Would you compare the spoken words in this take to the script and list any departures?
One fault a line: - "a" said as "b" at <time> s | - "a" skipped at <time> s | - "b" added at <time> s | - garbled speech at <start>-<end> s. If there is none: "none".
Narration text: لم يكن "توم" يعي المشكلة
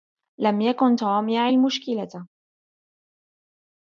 none